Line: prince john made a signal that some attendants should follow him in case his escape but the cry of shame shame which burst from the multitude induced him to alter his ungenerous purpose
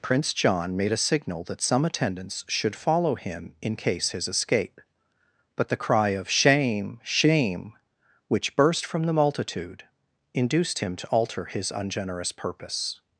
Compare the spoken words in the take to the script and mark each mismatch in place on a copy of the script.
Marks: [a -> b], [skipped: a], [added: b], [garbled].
prince john made a signal that some attendants should follow him in case his escape but the cry of shame shame which burst from the multitude induced him to alter his ungenerous purpose